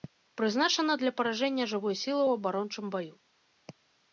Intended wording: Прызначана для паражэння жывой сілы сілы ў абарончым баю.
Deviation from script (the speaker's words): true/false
true